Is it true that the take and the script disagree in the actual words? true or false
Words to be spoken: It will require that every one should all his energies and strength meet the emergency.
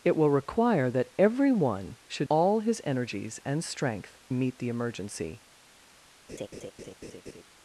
false